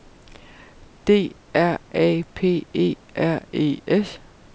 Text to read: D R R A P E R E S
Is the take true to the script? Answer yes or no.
no